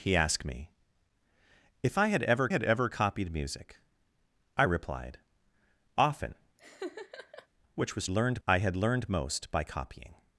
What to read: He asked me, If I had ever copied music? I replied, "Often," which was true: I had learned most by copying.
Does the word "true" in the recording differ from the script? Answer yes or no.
yes